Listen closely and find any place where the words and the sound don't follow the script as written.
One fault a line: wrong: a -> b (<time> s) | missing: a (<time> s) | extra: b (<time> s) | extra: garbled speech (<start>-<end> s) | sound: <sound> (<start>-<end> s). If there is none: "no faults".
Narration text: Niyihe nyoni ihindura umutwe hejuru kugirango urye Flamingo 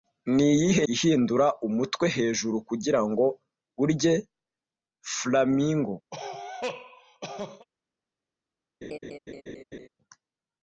missing: nyoni (0.8 s)
sound: cough (6.1-7.7 s)
sound: laugh (8.8-9.9 s)